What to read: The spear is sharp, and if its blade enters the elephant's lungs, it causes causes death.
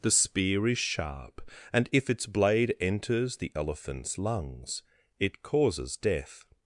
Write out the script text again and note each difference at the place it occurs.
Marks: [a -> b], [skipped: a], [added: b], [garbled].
The spear is sharp, and if its blade enters the elephant's lungs, it causes [skipped: causes] death.